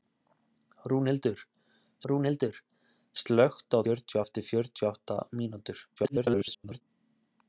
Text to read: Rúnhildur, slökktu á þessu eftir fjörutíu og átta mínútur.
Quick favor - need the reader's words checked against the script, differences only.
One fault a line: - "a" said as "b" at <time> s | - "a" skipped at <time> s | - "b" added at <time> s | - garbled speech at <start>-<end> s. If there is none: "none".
- "rúnhildur" added at 2.1 s
- "þessu" said as "fjörutíu" at 3.8 s
- garbled speech at 6.0-6.8 s